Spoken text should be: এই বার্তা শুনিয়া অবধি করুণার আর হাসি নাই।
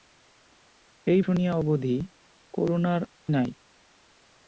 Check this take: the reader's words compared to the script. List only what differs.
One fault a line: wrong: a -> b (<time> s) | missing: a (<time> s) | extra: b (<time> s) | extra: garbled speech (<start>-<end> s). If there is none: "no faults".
missing: বার্তা (1.2 s)
missing: আর হাসি (3.0 s)